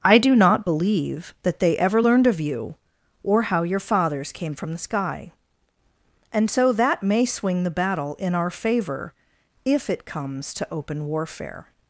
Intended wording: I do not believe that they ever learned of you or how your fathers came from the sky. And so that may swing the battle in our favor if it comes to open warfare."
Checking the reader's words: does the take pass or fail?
pass